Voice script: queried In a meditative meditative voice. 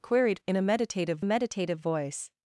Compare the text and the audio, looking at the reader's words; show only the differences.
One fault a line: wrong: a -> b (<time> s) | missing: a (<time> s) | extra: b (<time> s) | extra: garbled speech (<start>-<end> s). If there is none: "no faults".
no faults